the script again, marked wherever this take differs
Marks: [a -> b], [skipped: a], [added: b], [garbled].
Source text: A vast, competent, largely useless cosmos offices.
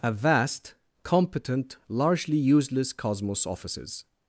A vast, competent, largely useless cosmos offices.